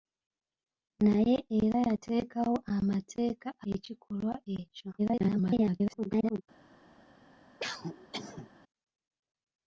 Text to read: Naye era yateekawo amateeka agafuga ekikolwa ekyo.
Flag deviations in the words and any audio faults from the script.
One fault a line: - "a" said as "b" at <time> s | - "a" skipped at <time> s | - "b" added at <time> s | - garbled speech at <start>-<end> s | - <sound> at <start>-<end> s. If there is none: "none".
- "agafuga" skipped at 3.5 s
- garbled speech at 5.0-6.4 s
- cough at 7.6-8.5 s